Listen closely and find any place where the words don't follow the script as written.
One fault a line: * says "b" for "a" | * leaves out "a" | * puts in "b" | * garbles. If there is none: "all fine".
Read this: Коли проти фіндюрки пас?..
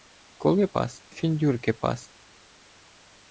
* says "пас" for "проти"